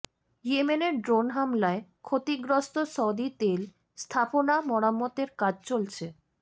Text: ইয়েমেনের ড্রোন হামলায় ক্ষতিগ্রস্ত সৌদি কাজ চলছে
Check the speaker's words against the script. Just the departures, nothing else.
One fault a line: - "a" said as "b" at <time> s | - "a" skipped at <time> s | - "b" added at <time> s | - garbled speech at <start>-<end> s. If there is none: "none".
- "তেল স্থাপনা মেরামতের" added at 3.4 s